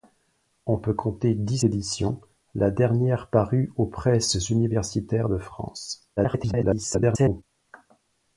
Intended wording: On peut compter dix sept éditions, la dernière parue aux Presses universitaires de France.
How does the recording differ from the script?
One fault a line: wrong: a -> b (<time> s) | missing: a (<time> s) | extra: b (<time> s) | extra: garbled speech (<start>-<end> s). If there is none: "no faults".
missing: sept (1.6 s)
extra: garbled speech (6.2-7.4 s)